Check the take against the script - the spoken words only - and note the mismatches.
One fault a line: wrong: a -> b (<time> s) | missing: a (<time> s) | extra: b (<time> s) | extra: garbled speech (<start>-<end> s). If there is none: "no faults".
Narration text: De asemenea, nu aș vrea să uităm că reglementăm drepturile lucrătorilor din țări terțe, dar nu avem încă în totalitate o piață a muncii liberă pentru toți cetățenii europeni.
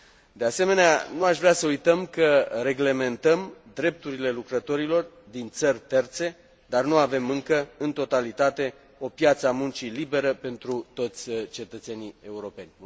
no faults